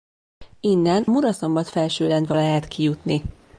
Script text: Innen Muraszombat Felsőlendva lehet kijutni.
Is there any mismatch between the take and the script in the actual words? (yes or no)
no